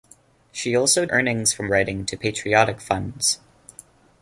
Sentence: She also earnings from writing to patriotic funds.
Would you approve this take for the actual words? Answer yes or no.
yes